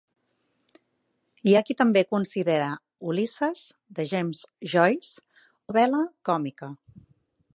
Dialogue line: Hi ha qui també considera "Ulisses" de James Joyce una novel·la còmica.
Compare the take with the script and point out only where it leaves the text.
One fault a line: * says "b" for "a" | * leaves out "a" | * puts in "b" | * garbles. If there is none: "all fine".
* leaves out "una"